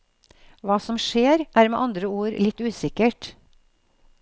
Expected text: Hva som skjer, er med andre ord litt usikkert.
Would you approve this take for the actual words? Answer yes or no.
yes